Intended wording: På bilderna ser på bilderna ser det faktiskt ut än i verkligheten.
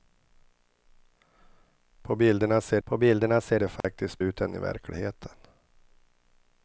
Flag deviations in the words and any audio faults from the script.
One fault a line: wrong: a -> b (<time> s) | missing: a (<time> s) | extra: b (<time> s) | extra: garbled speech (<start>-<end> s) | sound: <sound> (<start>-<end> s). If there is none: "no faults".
sound: dropout (3.8-3.8 s)